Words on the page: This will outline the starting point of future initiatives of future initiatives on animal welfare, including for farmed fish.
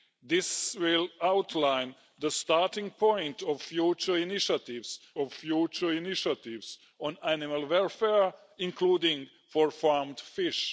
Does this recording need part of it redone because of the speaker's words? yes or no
no